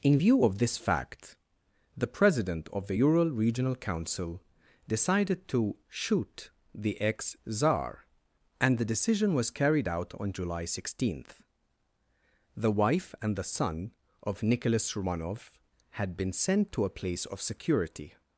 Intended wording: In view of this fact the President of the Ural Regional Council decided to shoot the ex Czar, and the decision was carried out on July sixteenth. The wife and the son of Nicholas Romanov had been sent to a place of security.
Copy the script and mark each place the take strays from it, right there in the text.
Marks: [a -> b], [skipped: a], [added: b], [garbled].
In view of this fact the President of the Ural Regional Council decided to shoot the ex Czar, and the decision was carried out on July sixteenth. The wife and the son of Nicholas Romanov had been sent to a place of security.